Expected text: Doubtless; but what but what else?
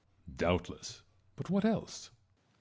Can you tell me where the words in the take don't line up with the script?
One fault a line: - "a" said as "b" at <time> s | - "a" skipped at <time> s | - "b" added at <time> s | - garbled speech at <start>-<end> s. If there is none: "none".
- "but what" skipped at 1.6 s